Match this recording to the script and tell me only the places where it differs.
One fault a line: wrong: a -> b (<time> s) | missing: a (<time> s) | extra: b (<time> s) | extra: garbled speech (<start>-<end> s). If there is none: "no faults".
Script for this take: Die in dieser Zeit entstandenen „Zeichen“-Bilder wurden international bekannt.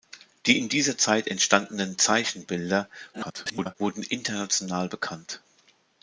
extra: garbled speech (3.1-3.8 s)